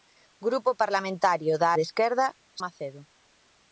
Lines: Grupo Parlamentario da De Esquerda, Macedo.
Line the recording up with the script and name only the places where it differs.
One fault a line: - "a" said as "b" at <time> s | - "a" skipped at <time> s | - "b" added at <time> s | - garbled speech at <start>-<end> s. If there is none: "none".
none